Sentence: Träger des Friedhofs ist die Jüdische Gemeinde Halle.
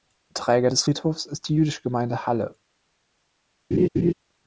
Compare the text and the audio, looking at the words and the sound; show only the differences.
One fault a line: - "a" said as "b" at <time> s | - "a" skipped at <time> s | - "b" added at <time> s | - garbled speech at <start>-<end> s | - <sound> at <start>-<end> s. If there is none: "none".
- laugh at 3.7-4.1 s